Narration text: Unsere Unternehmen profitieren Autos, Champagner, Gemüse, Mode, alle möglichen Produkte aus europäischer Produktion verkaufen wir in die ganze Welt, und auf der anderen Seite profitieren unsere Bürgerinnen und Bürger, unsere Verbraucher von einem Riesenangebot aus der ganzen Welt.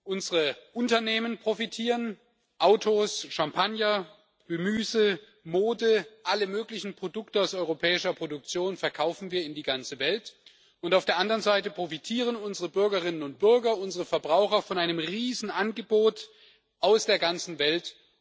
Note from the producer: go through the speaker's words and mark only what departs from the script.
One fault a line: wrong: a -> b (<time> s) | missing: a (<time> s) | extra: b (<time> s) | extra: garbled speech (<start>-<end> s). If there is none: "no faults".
no faults